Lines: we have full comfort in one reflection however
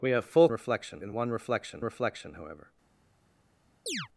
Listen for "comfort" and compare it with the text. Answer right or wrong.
wrong